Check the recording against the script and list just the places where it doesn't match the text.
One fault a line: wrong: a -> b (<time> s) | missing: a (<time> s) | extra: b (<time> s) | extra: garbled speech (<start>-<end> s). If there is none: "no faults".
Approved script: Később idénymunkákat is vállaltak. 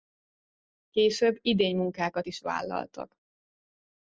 no faults